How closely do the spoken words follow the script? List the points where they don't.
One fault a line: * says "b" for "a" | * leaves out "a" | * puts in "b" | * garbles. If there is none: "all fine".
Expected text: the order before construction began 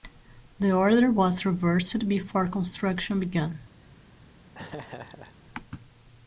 * puts in "was reversed"